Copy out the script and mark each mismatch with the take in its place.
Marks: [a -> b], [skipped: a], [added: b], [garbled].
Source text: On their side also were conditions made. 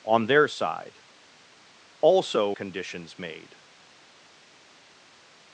On their side also [skipped: were] conditions made.